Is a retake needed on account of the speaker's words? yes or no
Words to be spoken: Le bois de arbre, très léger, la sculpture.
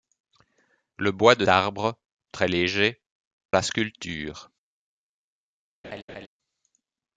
no